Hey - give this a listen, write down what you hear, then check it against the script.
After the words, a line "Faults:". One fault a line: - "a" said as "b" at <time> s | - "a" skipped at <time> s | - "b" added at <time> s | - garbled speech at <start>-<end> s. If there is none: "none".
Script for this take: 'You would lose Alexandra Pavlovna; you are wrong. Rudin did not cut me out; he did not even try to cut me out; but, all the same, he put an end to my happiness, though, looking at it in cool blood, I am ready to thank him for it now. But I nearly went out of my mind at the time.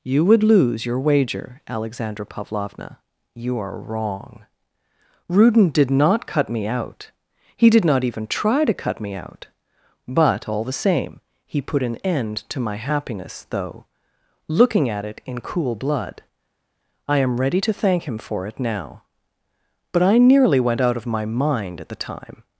'You would lose your wager, Alexandra Pavlovna; you are wrong. Rudin did not cut me out; he did not even try to cut me out; but, all the same, he put an end to my happiness, though, looking at it in cool blood, I am ready to thank him for it now. But I nearly went out of my mind at the time.
Faults:
- "your wager" added at 0.8 s